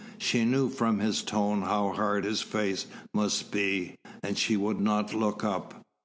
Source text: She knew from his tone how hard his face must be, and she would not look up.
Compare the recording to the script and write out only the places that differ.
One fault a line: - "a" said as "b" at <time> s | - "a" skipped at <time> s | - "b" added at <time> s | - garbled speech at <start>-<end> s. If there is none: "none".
none